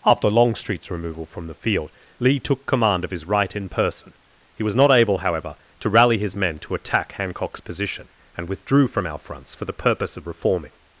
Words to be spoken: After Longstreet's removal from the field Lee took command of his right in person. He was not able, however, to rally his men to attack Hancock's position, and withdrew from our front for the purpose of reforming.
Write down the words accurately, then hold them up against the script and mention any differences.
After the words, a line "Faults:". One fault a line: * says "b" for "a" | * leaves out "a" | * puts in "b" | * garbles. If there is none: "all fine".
After Longstreet's removal from the field Lee took command of his right in person. He was not able, however, to rally his men to attack Hancock's position, and withdrew from our fronts for the purpose of reforming.
Faults:
* says "fronts" for "front"